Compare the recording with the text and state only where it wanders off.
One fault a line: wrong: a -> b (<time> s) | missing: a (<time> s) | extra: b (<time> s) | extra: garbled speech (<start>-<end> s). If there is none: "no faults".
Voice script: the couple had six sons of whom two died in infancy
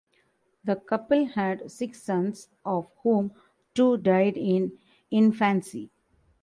no faults